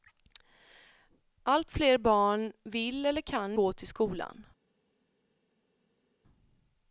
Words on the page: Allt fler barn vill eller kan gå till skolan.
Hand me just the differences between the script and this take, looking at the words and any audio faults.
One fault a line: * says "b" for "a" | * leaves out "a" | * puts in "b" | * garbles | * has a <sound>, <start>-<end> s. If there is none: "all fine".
all fine